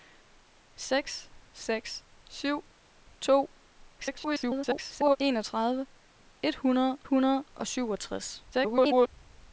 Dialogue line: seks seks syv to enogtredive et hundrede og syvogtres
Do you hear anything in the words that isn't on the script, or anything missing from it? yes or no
yes